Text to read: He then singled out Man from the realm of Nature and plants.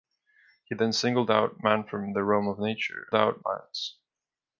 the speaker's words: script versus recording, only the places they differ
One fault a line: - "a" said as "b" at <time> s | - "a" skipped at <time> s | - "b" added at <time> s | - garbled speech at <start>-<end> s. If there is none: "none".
- "and" said as "out" at 3.1 s